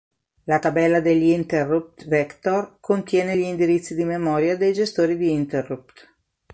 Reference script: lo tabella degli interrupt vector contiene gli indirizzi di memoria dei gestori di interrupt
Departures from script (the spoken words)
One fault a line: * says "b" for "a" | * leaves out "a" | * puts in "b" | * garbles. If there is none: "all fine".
* says "la" for "lo"